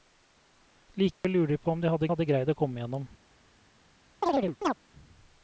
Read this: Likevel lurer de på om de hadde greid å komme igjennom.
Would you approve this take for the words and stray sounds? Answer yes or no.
no